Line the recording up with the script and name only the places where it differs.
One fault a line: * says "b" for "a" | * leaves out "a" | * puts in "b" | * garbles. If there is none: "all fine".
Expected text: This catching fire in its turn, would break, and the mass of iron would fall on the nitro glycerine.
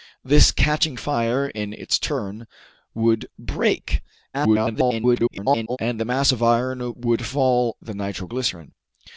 * garbles
* leaves out "on"